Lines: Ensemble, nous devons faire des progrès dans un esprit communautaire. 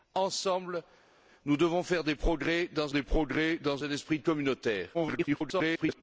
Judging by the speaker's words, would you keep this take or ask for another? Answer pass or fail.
fail